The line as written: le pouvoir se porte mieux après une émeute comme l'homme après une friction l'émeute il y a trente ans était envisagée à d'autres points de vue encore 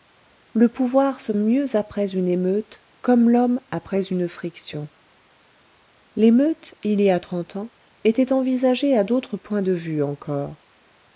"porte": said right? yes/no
no